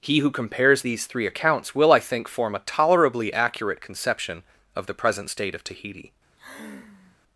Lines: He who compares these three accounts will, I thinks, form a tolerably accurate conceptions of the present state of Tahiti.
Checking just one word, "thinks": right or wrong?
wrong